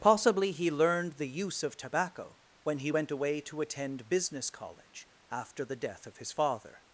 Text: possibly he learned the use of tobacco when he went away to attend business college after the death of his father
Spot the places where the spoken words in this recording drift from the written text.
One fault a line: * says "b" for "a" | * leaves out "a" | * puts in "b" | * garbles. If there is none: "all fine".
all fine